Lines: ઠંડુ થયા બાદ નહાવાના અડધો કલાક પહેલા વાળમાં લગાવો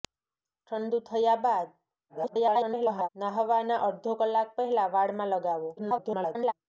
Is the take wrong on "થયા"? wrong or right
right